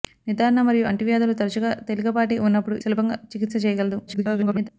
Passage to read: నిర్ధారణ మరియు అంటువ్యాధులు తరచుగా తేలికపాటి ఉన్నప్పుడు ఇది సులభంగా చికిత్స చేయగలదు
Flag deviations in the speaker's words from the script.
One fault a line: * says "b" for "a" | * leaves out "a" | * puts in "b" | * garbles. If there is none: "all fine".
* leaves out "ఇది"
* garbles